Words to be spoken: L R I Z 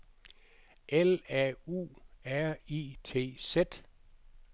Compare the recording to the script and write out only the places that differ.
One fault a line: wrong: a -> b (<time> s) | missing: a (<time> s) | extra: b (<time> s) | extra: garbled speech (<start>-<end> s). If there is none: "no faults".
extra: A U (1.3 s)
extra: T (3.0 s)